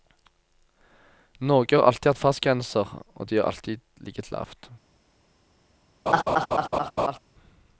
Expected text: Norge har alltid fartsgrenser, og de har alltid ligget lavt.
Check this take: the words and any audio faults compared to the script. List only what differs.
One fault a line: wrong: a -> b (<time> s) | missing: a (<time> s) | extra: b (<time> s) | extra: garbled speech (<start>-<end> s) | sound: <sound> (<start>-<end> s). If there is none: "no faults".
extra: hatt (2.1 s)
sound: laugh (6.1-7.2 s)